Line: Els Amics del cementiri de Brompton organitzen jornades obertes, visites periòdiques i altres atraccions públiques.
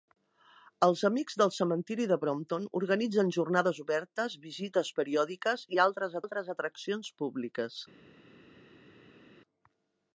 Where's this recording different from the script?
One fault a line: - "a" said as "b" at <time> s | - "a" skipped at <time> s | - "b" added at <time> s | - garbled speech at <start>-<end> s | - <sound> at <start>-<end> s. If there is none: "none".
- "altres" added at 6.2 s